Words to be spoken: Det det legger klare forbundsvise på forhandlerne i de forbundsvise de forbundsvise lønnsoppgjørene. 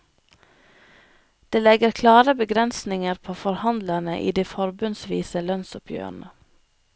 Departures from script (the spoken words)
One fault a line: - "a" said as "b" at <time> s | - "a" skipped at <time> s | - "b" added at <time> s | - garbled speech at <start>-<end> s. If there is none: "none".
- "det" skipped at 1.6 s
- "forbundsvise" said as "begrensninger" at 2.3 s
- "de forbundsvise" skipped at 5.4 s